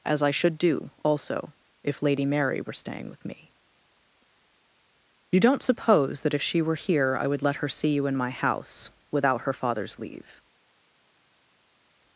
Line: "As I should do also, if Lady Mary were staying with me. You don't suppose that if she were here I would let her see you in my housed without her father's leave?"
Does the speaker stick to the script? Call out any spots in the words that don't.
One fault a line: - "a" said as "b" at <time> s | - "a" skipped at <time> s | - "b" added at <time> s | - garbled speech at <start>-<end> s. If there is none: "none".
- "housed" said as "house" at 8.3 s